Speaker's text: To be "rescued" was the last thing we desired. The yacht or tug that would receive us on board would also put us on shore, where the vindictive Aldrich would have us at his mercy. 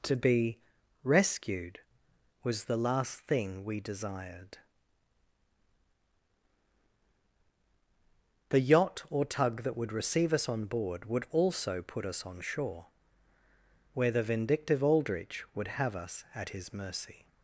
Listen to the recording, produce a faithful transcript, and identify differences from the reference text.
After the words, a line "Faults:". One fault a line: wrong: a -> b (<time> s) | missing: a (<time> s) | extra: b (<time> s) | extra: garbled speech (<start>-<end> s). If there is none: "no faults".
To be "rescued" was the last thing we desired. The yacht or tug that would receive us on board would also put us on shore, where the vindictive Aldrich would have us at his mercy.
Faults:
no faults